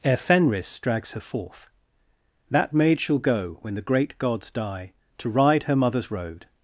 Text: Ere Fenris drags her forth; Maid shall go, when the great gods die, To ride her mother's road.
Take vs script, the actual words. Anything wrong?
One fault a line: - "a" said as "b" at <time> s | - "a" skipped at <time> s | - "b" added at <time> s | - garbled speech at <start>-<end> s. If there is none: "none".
- "That" added at 2.5 s